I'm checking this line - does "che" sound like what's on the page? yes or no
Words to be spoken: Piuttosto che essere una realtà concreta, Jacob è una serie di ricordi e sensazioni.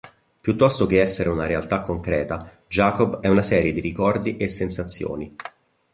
yes